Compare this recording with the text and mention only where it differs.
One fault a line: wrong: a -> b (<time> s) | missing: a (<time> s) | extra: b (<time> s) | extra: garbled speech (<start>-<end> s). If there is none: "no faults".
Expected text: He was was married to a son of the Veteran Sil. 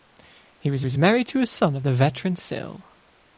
no faults